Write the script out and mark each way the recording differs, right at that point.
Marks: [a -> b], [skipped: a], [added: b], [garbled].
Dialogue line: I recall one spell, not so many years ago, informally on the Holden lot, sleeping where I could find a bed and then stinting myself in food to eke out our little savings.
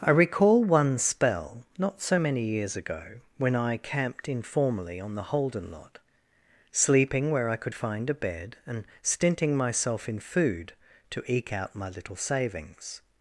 I recall one spell, not so many years ago, [added: when I camped] informally on the Holden lot, sleeping where I could find a bed and [skipped: then] stinting myself in food to eke out [our -> my] little savings.